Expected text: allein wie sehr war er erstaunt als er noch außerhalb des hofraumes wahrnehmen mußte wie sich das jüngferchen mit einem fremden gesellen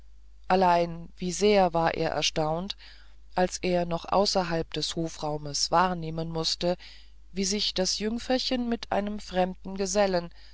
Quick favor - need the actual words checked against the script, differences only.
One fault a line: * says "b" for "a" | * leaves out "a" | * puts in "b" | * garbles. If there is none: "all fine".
all fine